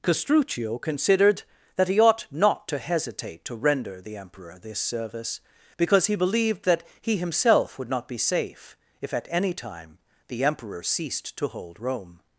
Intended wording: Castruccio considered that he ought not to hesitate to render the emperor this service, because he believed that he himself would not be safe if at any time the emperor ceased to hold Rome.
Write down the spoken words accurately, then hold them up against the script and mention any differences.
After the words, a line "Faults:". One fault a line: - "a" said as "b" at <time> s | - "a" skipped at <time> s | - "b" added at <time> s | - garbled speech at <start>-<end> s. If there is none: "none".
Castruccio considered that he ought not to hesitate to render the emperor this service, because he believed that he himself would not be safe if at any time the emperor ceased to hold Rome.
Faults:
none